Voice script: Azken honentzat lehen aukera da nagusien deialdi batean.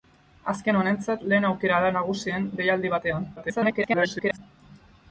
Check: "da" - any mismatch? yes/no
no